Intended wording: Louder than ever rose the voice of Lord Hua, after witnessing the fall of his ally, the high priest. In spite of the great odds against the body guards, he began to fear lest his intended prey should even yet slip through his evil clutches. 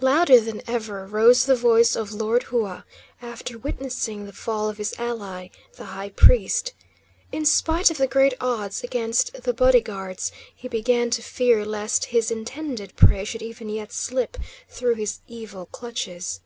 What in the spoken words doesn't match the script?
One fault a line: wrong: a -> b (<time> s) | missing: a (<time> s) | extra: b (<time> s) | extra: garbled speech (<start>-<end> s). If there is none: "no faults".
no faults